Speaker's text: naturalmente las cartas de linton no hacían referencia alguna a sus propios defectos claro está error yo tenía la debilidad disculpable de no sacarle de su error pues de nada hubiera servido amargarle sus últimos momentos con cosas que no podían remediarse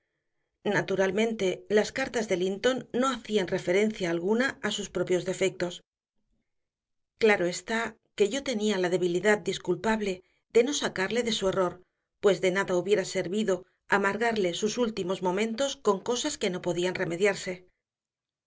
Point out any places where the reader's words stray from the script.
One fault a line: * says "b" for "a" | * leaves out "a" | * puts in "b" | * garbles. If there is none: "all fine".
* says "que" for "error"